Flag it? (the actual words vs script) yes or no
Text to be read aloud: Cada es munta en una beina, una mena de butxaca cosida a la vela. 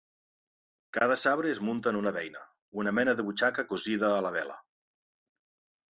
yes